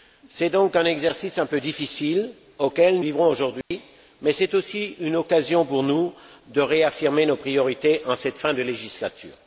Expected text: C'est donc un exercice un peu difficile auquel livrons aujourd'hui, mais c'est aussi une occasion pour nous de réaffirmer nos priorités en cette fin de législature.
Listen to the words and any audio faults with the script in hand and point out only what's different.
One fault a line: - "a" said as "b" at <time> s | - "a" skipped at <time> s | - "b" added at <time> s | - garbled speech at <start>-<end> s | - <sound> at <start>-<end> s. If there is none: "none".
- dropout at 3.6-3.7 s